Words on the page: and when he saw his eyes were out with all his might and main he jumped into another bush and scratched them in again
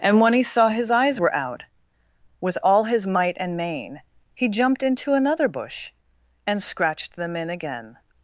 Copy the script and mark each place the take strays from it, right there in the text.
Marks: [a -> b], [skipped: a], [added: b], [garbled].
and when he saw his eyes were out with all his might and main he jumped into another bush and scratched them in again